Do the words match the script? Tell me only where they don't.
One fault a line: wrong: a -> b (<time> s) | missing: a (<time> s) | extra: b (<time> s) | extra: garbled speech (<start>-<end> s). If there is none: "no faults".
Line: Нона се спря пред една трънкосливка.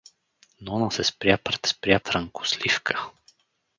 wrong: една -> спря (1.7 s)